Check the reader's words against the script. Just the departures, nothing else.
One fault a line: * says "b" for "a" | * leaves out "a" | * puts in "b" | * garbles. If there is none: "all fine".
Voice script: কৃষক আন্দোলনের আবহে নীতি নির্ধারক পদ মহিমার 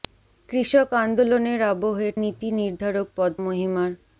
all fine